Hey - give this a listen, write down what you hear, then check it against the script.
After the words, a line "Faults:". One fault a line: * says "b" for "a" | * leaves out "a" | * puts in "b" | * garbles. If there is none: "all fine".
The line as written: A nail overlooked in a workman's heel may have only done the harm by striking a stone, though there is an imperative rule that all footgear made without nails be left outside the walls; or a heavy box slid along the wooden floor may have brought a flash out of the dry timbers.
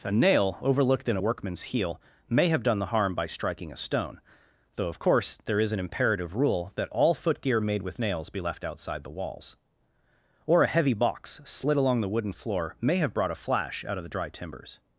A nail overlooked in a workman's heel may have done the harm by striking a stone, though of course there is an imperative rule that all footgear made with nails be left outside the walls; or a heavy box slid along the wooden floor may have brought a flash out of the dry timbers.
Faults:
* leaves out "only"
* puts in "of course"
* says "with" for "without"